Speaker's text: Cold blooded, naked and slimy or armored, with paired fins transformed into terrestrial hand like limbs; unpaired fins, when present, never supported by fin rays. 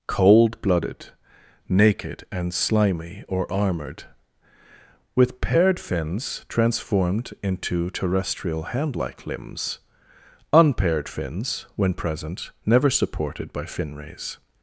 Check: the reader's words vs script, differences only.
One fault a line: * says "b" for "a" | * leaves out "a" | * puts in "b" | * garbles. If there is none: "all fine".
all fine